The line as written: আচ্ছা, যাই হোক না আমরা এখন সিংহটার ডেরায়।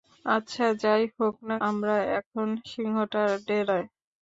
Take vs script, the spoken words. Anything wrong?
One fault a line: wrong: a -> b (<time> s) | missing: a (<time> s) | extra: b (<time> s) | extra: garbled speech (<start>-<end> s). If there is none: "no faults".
no faults